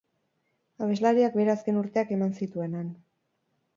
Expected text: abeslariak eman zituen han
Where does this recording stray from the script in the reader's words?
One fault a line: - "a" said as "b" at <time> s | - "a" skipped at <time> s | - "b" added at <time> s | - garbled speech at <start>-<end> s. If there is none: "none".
- "bere azken urteak" added at 1.4 s